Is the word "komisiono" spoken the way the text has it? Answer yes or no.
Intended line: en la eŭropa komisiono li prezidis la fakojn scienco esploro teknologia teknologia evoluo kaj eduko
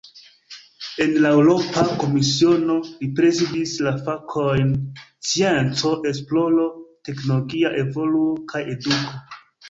yes